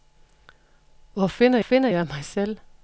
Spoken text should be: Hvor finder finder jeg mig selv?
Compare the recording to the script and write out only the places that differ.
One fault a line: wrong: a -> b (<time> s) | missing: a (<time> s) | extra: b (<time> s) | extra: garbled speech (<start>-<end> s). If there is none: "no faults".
no faults